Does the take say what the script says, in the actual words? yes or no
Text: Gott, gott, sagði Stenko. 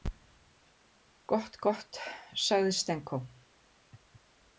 yes